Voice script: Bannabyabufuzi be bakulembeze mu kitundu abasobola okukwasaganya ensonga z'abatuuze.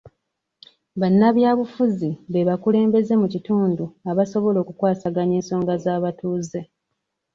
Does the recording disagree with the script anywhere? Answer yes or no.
no